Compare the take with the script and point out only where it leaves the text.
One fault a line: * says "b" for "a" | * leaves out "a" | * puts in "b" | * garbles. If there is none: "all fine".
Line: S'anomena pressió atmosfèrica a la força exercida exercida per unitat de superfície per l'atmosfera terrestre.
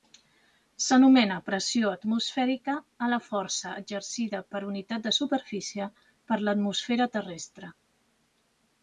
* leaves out "exercida"